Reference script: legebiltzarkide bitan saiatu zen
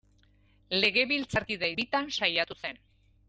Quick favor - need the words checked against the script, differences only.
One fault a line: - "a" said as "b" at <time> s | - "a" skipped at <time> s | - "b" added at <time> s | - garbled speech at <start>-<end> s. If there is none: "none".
none